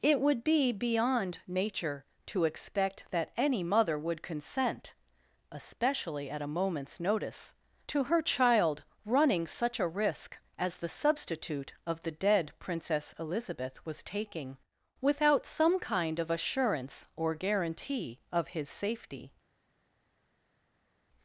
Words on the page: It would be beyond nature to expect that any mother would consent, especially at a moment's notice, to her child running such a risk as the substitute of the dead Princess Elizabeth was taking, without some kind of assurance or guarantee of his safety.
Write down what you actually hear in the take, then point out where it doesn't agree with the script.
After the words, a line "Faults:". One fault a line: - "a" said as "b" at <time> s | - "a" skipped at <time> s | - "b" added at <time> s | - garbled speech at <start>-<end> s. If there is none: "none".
It would be beyond nature to expect that any mother would consent, especially at a moment's notice, to her child running such a risk as the substitute of the dead Princess Elizabeth was taking, without some kind of assurance or guarantee of his safety.
Faults:
none